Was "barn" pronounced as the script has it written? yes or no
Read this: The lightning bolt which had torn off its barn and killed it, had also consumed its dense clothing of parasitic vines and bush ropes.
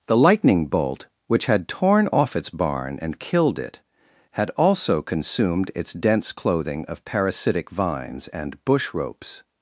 yes